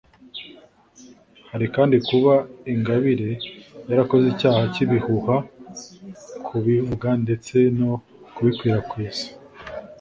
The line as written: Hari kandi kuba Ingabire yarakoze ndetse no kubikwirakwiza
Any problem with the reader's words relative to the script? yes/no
yes